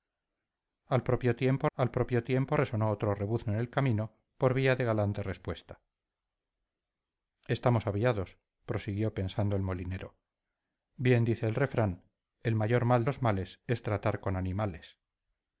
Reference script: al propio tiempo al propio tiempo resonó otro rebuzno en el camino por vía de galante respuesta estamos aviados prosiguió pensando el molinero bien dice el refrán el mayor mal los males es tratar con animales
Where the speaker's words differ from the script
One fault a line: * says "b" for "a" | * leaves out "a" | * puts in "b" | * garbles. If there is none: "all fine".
all fine